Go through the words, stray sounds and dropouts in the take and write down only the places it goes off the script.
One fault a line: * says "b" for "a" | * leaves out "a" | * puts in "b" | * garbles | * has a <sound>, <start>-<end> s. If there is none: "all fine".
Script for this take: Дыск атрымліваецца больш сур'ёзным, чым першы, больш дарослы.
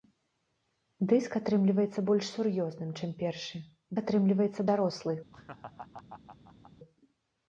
* says "атрымліваецца" for "больш"
* has a laugh, 5.3-6.7 s